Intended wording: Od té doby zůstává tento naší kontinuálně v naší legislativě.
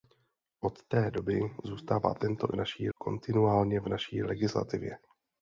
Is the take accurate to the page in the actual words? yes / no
yes